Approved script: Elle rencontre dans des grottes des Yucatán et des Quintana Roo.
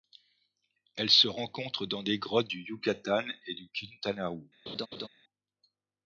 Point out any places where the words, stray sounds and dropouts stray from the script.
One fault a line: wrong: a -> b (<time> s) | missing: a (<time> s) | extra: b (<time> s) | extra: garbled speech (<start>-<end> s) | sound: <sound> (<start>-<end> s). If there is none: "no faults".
extra: se (1.1 s)
wrong: des -> du (2.4 s)
wrong: des -> du (3.5 s)
sound: laugh (4.7-5.1 s)